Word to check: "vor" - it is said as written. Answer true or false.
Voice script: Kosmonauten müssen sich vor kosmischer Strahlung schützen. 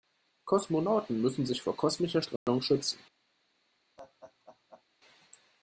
true